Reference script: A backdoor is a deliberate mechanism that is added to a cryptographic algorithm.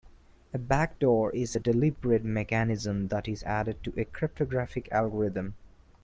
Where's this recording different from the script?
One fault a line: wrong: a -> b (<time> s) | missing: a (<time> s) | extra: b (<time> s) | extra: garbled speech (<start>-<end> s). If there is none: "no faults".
no faults